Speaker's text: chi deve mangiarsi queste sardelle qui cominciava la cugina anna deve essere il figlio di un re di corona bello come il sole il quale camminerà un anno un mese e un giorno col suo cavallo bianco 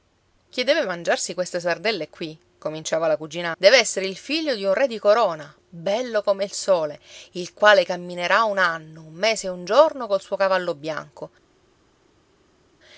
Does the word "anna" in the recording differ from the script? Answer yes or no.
yes